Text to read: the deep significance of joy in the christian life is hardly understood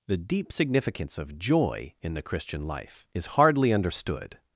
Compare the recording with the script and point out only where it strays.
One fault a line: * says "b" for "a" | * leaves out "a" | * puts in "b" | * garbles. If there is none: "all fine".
all fine